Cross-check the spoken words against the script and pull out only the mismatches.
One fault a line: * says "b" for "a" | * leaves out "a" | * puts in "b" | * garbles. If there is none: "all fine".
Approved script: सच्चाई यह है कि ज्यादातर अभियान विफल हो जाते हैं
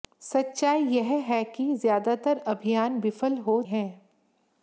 * leaves out "जाते"